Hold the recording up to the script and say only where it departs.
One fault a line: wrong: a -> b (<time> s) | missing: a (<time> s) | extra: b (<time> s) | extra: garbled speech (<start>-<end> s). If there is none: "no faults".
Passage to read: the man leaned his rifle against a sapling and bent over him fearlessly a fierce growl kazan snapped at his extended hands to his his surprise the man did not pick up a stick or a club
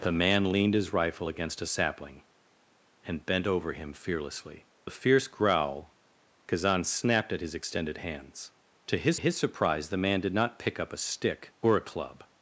no faults